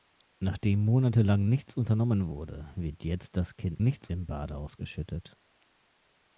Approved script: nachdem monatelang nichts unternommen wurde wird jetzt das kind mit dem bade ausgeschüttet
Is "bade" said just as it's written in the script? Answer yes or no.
yes